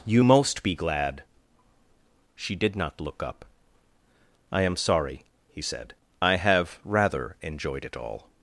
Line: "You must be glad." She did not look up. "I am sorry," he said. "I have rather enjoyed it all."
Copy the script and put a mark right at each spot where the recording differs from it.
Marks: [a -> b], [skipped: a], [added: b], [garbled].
"You [must -> most] be glad." She did not look up. "I am sorry," he said. "I have rather enjoyed it all."